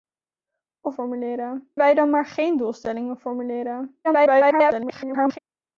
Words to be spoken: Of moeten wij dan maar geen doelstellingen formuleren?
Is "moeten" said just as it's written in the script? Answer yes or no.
no